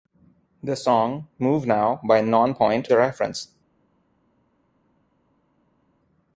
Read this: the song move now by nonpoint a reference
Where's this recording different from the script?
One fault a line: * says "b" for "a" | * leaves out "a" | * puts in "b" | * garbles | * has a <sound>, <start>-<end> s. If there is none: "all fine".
all fine